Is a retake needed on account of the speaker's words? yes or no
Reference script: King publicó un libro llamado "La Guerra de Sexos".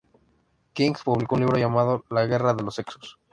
yes